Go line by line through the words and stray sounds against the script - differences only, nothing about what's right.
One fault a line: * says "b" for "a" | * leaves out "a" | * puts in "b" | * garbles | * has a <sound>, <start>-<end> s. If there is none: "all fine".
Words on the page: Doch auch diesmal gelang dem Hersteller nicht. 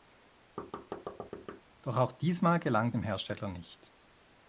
* has a thud, 0.6-1.6 s